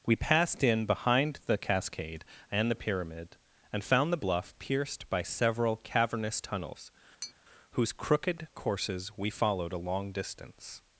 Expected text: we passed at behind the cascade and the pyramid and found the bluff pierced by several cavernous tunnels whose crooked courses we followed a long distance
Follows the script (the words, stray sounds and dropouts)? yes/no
no